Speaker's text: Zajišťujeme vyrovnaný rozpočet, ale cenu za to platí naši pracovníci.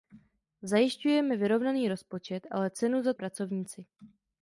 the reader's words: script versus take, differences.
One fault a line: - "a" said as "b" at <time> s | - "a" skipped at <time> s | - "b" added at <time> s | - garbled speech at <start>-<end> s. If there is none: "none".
- "to platí naši" skipped at 3.1 s